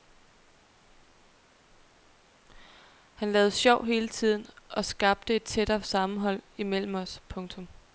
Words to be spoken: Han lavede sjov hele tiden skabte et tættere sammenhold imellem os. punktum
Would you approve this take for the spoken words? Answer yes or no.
no